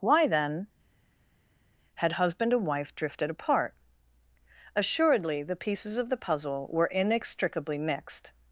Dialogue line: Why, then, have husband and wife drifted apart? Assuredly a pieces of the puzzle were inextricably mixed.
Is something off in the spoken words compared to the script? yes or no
yes